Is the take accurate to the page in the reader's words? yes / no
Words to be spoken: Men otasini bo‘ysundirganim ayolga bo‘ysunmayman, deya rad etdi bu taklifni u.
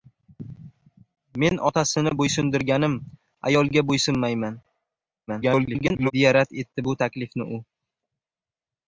no